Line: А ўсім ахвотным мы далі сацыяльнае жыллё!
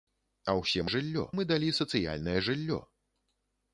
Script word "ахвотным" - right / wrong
wrong